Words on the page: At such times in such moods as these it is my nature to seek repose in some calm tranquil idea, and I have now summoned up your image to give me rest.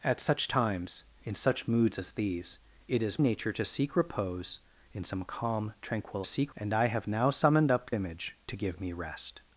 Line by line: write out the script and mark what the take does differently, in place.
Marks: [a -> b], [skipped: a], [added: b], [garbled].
At such times in such moods as these it is [skipped: my] nature to seek repose in some calm tranquil [idea, -> seek] and I have now summoned up [skipped: your] image to give me rest.